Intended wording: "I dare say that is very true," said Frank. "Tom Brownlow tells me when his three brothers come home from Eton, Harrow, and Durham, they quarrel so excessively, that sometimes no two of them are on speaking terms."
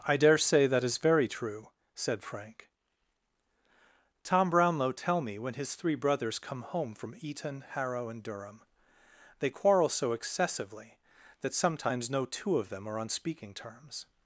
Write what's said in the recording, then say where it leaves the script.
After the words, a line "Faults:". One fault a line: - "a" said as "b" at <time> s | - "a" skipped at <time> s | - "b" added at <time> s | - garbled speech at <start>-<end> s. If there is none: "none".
"I dare say that is very true," said Frank. "Tom Brownlow tell me when his three brothers come home from Eton, Harrow, and Durham, they quarrel so excessively, that sometimes no two of them are on speaking terms."
Faults:
- "tells" said as "tell" at 4.9 s